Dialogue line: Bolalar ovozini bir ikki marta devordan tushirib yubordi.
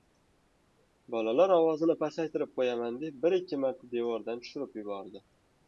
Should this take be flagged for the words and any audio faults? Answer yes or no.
yes